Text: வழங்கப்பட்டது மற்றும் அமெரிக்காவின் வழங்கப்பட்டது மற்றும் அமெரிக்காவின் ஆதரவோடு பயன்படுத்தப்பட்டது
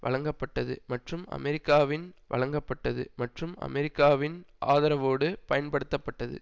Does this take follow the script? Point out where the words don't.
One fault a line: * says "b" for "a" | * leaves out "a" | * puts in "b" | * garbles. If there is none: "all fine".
all fine